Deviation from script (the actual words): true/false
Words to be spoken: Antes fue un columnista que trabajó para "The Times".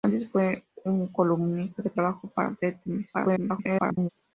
true